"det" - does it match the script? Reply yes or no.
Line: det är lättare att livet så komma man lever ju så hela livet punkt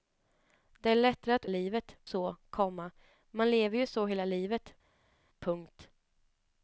yes